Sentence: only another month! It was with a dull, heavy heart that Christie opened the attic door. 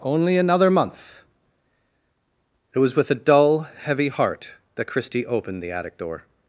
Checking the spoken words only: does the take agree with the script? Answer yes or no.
yes